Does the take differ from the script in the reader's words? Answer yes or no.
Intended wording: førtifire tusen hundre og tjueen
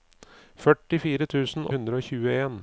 no